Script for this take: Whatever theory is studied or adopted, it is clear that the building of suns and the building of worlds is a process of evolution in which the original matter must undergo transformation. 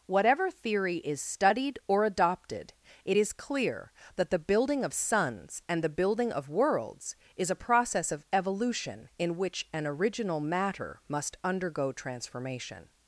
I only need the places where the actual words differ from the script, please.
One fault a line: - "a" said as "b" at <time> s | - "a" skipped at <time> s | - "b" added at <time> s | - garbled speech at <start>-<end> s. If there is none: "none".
- "the" said as "an" at 9.7 s